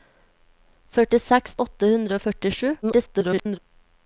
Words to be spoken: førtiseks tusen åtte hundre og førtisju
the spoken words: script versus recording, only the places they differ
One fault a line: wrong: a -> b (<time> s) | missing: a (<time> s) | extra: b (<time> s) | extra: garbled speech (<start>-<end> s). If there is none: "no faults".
missing: tusen (1.5 s)
extra: garbled speech (2.8-3.6 s)